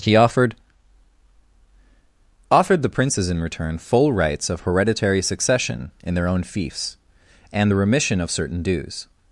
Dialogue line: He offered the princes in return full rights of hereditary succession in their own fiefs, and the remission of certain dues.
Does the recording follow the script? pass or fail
fail